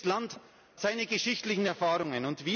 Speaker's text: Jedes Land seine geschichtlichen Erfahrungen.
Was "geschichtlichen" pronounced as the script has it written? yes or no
yes